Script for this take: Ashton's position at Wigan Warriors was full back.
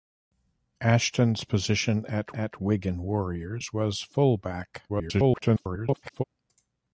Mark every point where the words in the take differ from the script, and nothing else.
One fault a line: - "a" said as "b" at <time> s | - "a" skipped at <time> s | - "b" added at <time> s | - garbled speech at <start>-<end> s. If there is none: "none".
- "at" added at 2.3 s
- garbled speech at 4.9-6.2 s